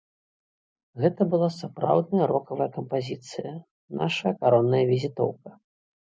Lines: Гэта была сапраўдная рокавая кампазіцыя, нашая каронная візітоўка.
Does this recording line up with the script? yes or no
yes